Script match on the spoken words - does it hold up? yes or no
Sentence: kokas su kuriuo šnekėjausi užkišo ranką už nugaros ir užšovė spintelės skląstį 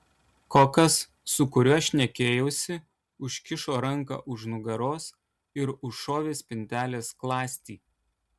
yes